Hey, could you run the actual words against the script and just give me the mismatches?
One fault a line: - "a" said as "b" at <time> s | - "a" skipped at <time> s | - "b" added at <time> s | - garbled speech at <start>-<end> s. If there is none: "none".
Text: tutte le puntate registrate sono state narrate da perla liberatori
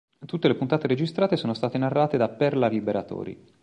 none